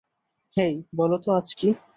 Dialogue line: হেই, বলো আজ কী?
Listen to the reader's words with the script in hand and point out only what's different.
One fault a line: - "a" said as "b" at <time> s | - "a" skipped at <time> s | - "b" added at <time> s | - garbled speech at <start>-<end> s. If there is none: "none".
- "তো" added at 1.2 s